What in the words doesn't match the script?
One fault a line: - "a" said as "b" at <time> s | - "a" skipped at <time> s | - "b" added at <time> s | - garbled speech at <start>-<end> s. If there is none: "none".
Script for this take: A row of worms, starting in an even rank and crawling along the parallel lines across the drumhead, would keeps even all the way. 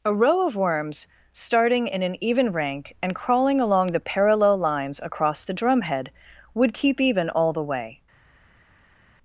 - "keeps" said as "keep" at 6.7 s